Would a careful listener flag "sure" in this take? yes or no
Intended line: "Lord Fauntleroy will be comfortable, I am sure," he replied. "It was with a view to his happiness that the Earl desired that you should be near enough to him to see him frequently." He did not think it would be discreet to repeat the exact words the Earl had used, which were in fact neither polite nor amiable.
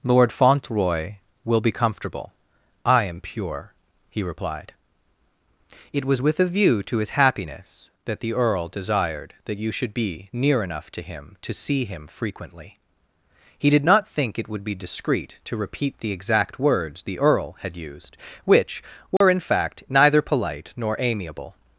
yes